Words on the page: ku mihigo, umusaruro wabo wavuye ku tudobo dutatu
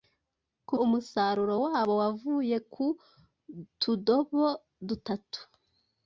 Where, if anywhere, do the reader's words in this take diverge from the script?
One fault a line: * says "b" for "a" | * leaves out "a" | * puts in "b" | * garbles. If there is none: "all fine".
* leaves out "mihigo"